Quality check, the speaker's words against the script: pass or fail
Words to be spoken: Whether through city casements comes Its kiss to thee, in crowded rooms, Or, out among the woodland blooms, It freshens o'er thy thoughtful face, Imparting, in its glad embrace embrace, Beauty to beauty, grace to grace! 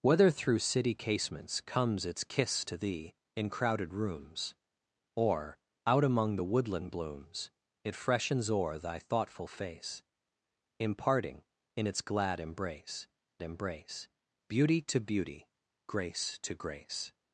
pass